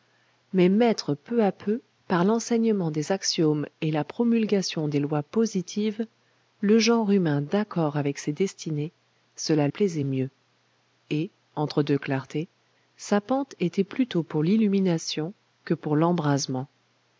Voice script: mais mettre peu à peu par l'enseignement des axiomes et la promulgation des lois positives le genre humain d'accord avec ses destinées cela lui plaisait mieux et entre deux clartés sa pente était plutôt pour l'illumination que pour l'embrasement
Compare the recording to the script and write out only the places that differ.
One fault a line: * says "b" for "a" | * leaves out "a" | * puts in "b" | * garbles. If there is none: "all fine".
* leaves out "lui"